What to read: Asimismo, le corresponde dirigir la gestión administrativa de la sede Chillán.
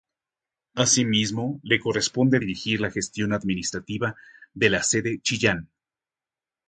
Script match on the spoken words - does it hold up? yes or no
yes